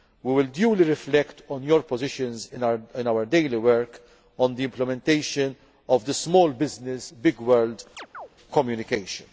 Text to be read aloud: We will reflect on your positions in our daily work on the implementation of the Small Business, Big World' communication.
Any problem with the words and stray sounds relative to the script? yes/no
yes